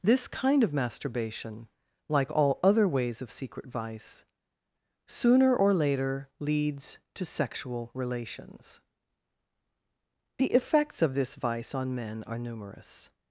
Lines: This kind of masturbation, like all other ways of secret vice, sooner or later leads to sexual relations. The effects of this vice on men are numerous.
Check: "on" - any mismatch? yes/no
no